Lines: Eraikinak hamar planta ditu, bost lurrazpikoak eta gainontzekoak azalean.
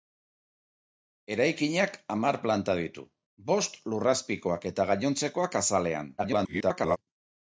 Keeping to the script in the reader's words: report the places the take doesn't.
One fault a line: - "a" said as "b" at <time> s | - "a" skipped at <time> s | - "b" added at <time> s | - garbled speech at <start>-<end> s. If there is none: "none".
- garbled speech at 6.2-7.0 s